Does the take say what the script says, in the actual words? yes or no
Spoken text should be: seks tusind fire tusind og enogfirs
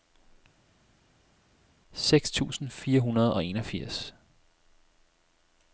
no